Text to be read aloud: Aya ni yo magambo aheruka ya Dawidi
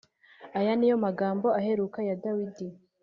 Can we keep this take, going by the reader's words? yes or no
yes